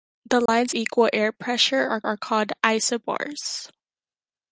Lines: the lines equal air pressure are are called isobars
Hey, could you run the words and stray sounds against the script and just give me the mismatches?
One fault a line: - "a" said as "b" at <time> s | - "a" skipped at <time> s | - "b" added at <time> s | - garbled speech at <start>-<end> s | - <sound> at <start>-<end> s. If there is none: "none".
- dropout at 0.5-0.5 s